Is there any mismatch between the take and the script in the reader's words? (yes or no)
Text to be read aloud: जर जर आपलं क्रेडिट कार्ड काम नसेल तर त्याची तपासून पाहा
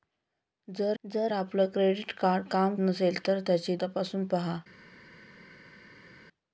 no